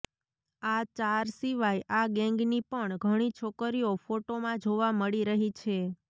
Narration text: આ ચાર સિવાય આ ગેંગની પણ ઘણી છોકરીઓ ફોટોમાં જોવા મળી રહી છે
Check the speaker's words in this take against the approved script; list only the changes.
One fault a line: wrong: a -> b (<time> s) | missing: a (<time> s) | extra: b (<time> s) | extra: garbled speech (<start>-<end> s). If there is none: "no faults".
no faults